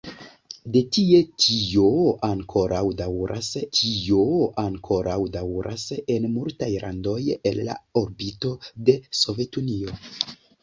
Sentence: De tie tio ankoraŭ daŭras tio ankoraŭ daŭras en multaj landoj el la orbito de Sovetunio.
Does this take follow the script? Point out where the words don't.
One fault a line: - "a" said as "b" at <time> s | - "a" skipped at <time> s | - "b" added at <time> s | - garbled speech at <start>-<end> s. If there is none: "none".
none